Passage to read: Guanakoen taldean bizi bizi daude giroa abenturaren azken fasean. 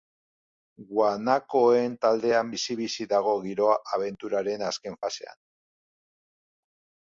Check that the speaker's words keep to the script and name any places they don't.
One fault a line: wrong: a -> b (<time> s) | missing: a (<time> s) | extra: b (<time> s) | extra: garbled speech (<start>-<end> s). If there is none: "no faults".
wrong: daude -> dago (3.1 s)